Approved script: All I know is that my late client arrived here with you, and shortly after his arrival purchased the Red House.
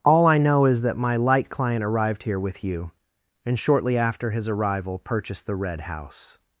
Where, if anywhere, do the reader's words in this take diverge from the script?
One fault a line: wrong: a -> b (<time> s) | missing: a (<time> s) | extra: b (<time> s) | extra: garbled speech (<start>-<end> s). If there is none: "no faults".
wrong: late -> light (1.1 s)